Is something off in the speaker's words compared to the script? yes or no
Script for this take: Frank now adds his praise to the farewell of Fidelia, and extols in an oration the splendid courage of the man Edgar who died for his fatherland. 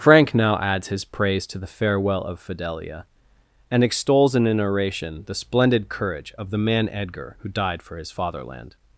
no